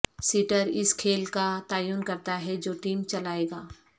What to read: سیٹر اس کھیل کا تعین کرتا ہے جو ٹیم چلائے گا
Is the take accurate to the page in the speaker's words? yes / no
yes